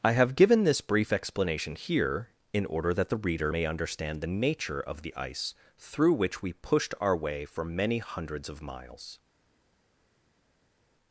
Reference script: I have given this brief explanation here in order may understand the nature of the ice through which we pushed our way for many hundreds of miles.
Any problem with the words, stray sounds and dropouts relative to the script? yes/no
yes